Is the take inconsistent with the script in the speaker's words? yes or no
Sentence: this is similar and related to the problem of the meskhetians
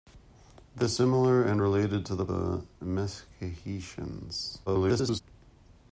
yes